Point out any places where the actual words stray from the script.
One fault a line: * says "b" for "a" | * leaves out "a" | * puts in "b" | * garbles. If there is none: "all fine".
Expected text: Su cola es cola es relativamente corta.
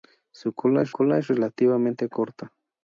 all fine